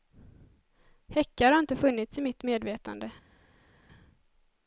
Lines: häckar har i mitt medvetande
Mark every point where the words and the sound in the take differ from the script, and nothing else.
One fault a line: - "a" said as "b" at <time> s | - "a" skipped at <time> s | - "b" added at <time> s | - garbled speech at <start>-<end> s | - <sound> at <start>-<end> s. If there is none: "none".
- "inte funnits" added at 1.6 s